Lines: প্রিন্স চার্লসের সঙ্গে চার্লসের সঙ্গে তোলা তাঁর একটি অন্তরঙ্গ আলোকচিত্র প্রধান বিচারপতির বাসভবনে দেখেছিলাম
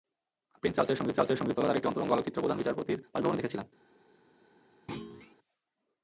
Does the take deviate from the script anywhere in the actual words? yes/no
no